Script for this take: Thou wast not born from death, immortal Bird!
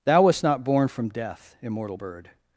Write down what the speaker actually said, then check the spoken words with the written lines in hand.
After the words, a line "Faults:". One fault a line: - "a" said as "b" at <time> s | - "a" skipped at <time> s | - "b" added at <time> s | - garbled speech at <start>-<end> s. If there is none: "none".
Thou wast not born from death, immortal Bird!
Faults:
none